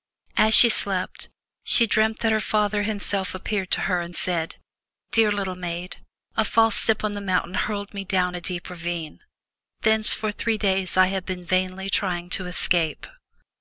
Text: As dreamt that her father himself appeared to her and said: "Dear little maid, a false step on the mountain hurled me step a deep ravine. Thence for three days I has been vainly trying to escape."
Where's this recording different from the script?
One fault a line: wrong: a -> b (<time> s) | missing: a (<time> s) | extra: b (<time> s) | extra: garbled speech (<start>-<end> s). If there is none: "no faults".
extra: she slept she (0.6 s)
wrong: step -> down (8.0 s)
wrong: has -> have (11.1 s)